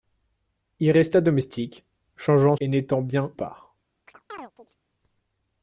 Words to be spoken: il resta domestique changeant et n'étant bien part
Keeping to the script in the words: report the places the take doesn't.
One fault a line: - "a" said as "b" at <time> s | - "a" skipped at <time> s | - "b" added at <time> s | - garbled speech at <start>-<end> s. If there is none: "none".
none